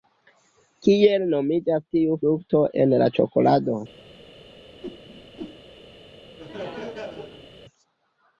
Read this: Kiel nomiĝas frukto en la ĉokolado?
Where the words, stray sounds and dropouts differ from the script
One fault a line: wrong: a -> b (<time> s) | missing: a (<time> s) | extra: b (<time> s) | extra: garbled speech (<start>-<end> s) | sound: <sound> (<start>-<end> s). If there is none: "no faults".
extra: tiu (2.0 s)
sound: whoosh (4.8-5.6 s)
sound: laugh (6.4-7.5 s)